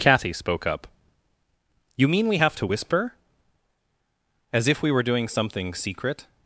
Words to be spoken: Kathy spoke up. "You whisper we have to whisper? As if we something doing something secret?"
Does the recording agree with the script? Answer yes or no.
no